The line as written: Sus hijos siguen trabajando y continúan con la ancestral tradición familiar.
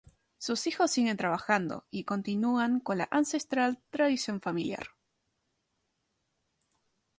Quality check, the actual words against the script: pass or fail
pass